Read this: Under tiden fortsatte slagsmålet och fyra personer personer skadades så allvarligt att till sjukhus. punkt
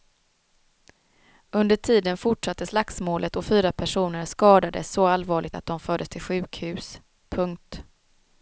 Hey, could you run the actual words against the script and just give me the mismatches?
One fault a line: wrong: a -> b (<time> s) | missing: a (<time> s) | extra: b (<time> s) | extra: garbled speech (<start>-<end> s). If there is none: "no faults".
missing: personer (4.2 s)
extra: de fördes (5.7 s)